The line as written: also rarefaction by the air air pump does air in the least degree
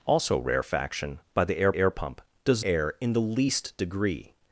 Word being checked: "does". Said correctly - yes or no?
yes